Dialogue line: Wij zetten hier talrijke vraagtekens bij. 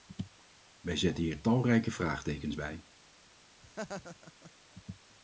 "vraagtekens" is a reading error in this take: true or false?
false